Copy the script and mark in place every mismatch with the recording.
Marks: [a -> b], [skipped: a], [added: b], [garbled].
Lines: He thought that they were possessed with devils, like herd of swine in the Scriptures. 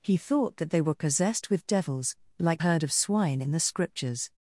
He thought that they were possessed with devils, like herd of swine in the Scriptures.